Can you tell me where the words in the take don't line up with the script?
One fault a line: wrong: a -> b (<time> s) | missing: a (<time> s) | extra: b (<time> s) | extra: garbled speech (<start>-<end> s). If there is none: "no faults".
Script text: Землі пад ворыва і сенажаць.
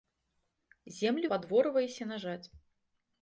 no faults